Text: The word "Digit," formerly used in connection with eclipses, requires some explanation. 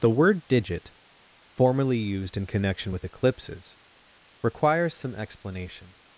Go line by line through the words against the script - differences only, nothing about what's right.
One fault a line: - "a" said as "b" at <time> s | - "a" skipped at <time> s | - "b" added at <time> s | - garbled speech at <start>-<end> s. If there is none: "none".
none